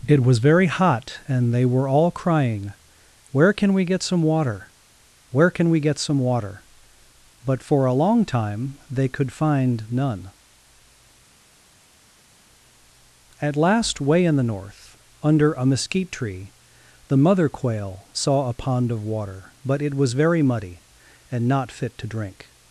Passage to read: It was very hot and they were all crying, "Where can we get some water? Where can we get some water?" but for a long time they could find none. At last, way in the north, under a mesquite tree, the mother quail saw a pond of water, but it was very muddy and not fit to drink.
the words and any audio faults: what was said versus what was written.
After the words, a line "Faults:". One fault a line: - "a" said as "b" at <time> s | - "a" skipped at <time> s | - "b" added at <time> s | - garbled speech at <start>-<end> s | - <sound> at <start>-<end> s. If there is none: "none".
It was very hot and they were all crying, "Where can we get some water? Where can we get some water?" but for a long time they could find none. At last, way in the north, under a mesquite tree, the mother quail saw a pond of water, but it was very muddy and not fit to drink.
Faults:
none